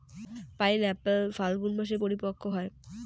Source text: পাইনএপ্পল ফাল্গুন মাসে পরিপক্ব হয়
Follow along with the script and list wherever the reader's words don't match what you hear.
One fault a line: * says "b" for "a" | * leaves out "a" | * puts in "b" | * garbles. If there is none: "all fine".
all fine